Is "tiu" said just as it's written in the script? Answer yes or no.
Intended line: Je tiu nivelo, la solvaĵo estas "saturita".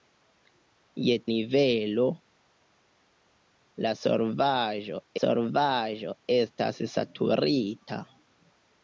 no